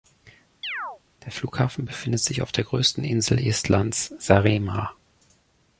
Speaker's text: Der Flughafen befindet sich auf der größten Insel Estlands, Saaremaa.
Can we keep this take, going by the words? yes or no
yes